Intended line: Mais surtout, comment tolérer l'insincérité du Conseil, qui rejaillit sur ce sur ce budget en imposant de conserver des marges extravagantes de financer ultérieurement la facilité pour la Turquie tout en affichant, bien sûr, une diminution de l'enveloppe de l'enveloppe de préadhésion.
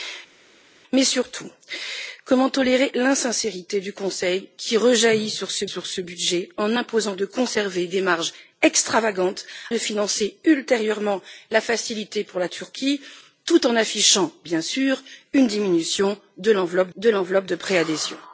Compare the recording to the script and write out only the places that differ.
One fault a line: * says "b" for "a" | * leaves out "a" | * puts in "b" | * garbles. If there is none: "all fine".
all fine